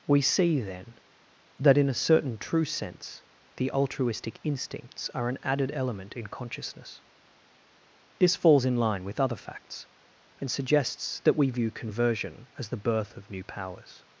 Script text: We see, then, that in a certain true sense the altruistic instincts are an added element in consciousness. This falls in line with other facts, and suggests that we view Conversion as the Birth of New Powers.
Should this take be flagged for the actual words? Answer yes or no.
no